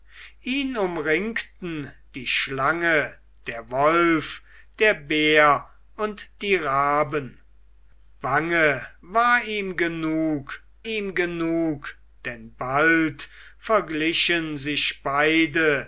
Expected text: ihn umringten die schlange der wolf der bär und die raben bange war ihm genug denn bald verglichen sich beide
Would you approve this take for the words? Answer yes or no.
no